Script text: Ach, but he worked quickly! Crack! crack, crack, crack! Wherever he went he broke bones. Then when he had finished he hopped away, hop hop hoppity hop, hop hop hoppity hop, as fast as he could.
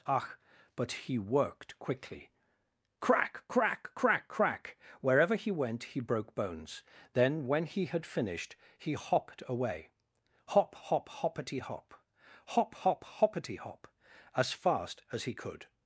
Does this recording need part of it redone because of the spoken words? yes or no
no